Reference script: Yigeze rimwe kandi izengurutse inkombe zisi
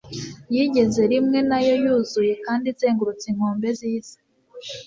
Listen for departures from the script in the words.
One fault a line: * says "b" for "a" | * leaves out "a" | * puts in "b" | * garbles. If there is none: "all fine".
* puts in "nayo yuzuye"